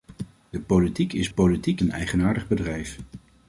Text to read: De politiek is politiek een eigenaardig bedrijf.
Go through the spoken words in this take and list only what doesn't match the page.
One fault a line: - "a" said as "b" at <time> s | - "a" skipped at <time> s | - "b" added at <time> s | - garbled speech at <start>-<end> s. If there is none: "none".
none